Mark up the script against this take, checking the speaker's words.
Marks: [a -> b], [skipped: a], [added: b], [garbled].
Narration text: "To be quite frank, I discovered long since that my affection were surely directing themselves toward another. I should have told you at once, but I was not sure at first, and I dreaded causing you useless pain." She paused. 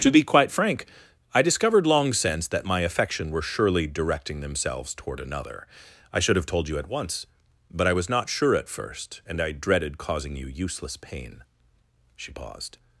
"To be quite frank, I discovered long since that my affection were surely directing themselves toward another. I should have told you at once, but I was not sure at first, and I dreaded causing you useless pain." She paused.